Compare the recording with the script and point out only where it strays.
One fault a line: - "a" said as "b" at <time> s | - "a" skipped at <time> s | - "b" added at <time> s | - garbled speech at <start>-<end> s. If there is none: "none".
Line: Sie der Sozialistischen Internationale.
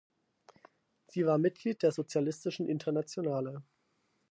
- "war Mitglied" added at 1.3 s